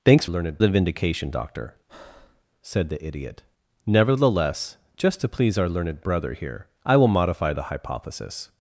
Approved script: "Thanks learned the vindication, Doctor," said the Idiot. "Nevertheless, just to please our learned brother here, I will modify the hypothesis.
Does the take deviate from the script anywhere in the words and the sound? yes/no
yes